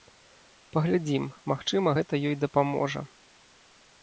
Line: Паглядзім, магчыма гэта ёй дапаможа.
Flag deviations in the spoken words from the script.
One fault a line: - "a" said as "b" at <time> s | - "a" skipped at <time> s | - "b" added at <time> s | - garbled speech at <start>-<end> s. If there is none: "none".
none